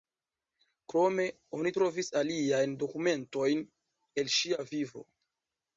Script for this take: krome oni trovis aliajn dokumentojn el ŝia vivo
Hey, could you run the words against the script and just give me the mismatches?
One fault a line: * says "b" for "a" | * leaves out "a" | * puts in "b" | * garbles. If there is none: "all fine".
all fine